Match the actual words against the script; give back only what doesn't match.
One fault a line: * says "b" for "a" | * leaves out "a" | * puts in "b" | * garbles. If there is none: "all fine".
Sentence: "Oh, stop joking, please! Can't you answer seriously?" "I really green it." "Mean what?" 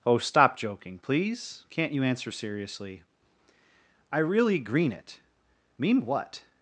all fine